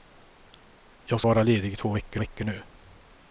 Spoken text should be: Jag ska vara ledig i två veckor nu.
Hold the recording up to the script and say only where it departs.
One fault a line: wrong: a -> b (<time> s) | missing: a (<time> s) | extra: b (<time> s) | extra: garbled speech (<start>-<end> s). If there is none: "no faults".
missing: ska (1.2 s)
extra: veckor (2.2 s)